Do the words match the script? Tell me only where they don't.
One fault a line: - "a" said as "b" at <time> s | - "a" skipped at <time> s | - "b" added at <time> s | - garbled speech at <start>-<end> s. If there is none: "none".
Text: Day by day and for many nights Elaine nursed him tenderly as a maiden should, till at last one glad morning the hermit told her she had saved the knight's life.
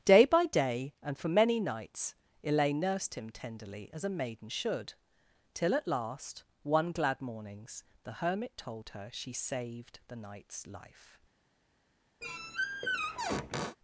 - "morning" said as "mornings" at 7.2 s
- "had" skipped at 9.3 s